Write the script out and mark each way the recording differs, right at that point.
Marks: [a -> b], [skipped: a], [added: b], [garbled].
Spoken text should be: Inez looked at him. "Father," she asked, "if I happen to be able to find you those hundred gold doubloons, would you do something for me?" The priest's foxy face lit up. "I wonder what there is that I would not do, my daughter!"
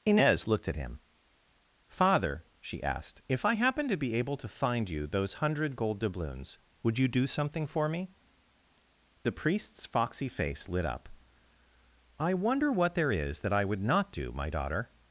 Inez looked at him. "Father," she asked, "if I happen to be able to find you those hundred gold doubloons, would you do something for me?" The priest's foxy face lit up. "I wonder what there is that I would not do, my daughter!"